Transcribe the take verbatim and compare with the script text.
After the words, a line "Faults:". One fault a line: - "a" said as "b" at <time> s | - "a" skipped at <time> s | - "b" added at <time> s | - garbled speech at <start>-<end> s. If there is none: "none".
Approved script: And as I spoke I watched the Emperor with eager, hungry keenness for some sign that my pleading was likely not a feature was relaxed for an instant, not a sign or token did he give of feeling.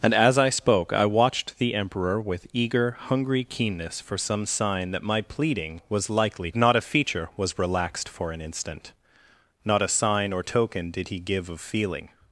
And as I spoke I watched the Emperor with eager, hungry keenness for some sign that my pleading was likely not a feature was relaxed for an instant, not a sign or token did he give of feeling.
Faults:
none